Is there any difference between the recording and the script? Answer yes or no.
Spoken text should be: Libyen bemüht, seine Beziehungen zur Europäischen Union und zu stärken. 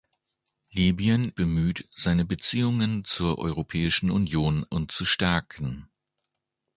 no